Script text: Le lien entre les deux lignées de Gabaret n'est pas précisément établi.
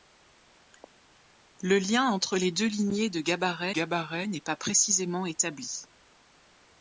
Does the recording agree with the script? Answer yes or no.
no